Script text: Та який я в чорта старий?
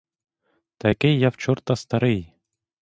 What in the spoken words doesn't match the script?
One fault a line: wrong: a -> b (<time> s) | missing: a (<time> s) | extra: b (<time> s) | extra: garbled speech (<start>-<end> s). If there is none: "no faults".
no faults